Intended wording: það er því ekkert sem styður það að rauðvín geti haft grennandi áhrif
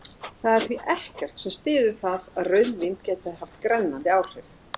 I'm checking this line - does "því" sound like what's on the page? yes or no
yes